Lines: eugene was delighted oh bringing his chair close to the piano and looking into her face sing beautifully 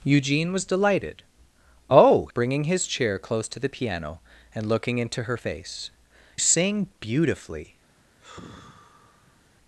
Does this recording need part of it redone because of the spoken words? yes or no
no